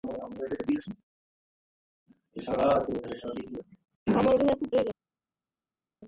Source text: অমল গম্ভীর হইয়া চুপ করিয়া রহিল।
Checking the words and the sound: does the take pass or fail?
fail